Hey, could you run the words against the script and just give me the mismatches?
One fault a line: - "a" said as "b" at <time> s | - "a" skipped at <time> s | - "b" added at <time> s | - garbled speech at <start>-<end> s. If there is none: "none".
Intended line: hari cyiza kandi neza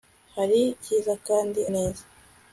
none